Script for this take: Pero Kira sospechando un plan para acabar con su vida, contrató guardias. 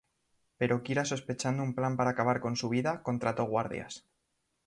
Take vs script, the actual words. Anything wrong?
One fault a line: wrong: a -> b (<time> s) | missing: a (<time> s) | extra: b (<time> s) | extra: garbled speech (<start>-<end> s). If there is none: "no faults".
no faults